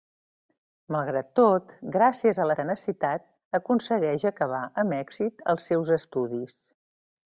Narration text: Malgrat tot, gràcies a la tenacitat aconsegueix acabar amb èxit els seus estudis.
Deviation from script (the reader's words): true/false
false